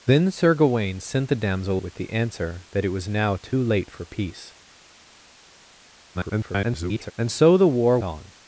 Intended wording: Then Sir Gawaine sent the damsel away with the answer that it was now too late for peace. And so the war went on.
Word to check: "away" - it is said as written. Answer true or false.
false